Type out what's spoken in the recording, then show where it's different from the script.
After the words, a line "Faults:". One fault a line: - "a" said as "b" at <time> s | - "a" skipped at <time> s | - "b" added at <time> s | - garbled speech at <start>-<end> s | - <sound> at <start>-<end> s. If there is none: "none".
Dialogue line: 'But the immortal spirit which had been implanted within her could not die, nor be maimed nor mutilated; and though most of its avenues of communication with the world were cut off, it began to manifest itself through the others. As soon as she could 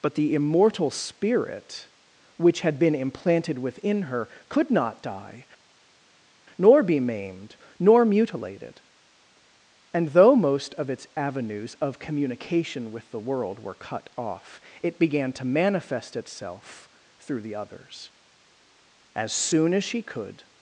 'But the immortal spirit which had been implanted within her could not die, nor be maimed nor mutilated; and though most of its avenues of communication with the world were cut off, it began to manifest itself through the others. As soon as she could
Faults:
none